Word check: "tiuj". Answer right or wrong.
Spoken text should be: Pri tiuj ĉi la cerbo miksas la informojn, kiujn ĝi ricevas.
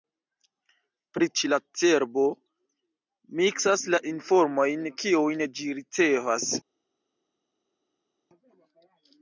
wrong